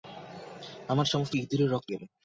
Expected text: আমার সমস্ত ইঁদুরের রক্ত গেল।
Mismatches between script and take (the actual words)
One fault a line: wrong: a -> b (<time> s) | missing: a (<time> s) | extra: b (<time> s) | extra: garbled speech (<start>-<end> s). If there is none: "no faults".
no faults